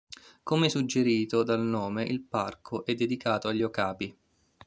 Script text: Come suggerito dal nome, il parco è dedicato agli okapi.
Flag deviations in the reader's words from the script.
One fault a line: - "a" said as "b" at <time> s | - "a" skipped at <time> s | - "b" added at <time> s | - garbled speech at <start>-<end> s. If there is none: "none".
none